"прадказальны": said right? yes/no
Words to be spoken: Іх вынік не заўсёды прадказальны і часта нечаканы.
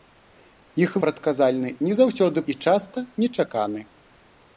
no